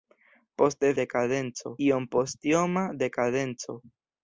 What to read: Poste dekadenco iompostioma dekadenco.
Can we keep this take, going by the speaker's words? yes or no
yes